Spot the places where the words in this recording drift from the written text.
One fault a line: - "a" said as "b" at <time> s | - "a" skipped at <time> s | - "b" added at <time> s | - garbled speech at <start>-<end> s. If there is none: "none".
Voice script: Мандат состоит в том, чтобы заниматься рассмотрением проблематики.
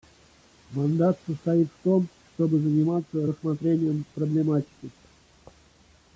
none